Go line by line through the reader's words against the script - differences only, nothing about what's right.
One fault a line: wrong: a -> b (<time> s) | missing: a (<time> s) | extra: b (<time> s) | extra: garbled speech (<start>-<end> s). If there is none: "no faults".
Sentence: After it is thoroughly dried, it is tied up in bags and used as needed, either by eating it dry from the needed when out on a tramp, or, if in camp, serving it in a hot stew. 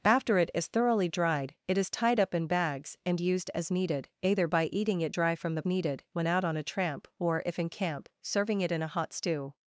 no faults